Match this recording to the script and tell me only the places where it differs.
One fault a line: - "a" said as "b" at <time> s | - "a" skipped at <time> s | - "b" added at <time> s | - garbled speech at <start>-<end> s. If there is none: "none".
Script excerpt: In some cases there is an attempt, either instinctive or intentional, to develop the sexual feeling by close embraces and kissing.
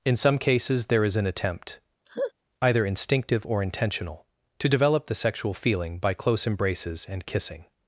none